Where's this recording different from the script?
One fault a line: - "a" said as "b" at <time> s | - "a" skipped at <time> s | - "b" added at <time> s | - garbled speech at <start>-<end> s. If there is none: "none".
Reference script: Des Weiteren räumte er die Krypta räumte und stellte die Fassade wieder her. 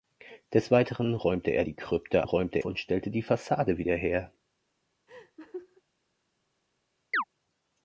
none